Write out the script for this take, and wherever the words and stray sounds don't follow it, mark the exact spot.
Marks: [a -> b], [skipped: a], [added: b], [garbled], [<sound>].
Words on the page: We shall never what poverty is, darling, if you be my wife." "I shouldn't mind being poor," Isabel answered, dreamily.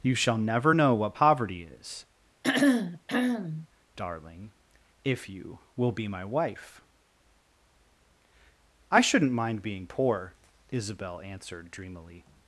[We -> You] shall never [added: know] what poverty is, [throat clearing] darling, if you [added: will] be my wife." "I shouldn't mind being poor," Isabel answered, dreamily.